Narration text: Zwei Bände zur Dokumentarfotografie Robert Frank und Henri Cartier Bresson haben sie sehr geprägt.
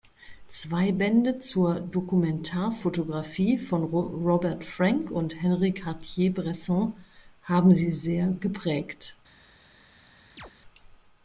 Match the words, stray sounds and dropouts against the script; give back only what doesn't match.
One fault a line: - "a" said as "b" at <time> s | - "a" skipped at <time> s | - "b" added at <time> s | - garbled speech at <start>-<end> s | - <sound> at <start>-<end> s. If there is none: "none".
- "von" added at 3.6 s
- chirp at 10.4-10.5 s